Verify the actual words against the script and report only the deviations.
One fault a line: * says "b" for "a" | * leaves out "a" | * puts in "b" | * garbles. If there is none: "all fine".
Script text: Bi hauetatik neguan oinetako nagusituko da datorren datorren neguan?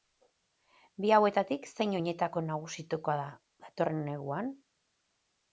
* says "zein" for "neguan"
* leaves out "datorren"